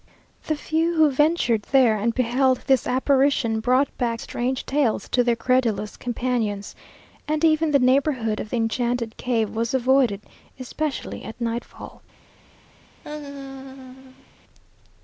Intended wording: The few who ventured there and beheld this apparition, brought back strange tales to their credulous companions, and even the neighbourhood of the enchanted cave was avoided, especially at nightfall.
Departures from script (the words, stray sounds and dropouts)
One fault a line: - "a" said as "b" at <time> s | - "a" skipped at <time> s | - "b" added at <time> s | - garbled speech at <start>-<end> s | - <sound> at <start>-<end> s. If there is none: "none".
- laugh at 13.0-14.3 s